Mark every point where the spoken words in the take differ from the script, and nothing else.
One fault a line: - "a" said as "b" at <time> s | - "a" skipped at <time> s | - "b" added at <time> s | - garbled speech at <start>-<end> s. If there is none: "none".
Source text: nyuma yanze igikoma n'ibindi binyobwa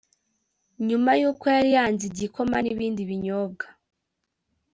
- "yuko yari" added at 1.2 s